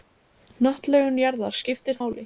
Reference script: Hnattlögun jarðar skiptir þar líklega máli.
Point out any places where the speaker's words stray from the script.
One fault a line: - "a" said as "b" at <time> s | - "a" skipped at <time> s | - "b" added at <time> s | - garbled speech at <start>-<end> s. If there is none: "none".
- "þar líklega" skipped at 2.0 s